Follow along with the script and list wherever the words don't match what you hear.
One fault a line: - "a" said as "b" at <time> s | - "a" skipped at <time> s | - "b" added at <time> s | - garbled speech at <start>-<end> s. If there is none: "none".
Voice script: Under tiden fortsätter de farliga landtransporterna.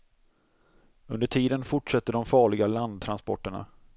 none